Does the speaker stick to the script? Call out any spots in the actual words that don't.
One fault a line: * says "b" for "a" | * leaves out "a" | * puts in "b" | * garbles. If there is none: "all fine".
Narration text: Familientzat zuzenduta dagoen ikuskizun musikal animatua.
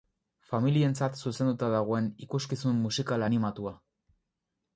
all fine